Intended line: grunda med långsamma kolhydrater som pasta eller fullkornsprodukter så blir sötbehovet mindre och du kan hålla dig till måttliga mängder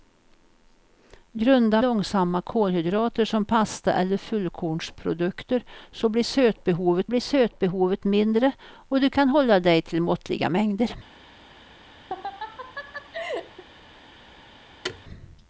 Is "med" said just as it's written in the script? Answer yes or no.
no